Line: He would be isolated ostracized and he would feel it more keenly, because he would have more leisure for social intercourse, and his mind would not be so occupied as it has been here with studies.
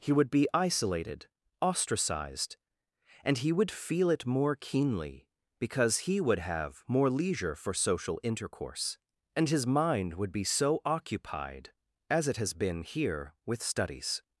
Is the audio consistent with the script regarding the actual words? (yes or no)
no